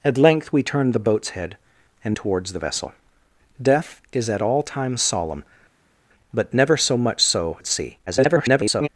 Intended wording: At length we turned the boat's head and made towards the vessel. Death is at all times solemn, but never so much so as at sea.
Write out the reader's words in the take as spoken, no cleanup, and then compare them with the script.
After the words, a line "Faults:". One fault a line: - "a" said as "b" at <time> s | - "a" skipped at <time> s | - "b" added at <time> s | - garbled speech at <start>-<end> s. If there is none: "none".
At length we turned the boat's head and towards the vessel. Death is at all times solemn, but never so much so at sea. [garbled]
Faults:
- "made" skipped at 2.2 s
- "as" skipped at 7.6 s
- garbled speech at 8.1-8.9 s